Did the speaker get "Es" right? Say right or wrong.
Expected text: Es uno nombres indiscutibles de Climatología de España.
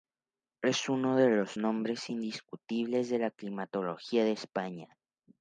right